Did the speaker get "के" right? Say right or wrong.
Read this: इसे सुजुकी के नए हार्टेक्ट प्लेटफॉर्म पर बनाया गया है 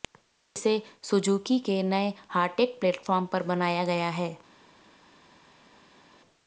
right